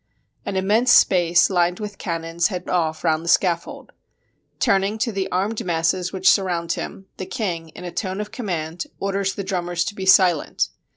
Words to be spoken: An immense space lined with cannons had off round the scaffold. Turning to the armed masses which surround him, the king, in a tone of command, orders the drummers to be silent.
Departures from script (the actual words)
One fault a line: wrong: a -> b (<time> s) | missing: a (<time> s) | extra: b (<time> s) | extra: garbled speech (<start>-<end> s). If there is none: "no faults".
no faults